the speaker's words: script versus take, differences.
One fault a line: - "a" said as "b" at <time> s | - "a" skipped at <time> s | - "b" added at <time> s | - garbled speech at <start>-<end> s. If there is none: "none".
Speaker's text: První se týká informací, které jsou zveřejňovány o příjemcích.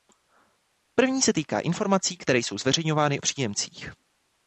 none